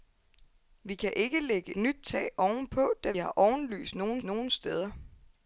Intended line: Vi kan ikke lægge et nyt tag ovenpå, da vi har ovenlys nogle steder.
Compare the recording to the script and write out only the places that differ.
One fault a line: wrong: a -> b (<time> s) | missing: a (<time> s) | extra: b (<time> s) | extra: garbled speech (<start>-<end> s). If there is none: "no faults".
missing: et (1.8 s)
missing: vi (3.1 s)
extra: nogle (4.2 s)